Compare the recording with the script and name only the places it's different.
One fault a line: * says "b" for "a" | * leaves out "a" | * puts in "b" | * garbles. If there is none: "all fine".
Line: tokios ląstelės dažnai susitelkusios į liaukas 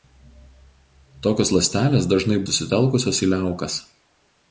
all fine